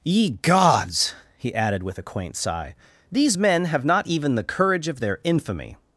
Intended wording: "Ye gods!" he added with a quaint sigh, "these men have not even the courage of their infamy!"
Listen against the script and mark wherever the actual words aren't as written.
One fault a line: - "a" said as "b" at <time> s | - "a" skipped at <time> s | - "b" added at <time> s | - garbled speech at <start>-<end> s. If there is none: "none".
none